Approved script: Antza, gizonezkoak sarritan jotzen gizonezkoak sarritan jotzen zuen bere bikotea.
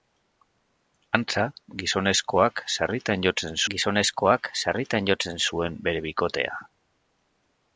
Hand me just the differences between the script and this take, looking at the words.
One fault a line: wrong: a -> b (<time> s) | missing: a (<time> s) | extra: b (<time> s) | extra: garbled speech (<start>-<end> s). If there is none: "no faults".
no faults